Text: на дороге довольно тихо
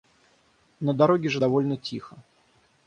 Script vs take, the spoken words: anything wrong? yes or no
yes